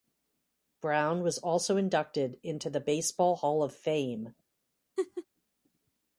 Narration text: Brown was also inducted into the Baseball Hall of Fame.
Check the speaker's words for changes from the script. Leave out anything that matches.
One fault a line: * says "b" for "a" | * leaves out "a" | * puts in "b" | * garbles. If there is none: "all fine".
all fine